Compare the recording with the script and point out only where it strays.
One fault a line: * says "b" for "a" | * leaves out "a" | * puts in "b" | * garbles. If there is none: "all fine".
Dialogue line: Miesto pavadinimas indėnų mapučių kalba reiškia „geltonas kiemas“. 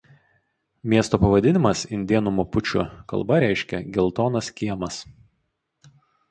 all fine